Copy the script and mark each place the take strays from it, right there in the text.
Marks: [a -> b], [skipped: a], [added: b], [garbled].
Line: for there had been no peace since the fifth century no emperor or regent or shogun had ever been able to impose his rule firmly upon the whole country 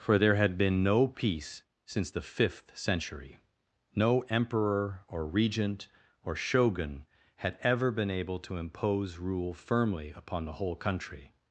for there had been no peace since the fifth century no emperor or regent or shogun had ever been able to impose [skipped: his] rule firmly upon the whole country